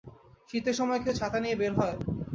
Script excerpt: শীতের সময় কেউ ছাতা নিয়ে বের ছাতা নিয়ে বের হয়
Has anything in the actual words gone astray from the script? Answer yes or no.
yes